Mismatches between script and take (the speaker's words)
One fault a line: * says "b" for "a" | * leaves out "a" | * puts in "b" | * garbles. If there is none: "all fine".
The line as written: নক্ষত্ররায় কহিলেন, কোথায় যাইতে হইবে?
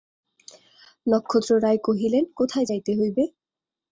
all fine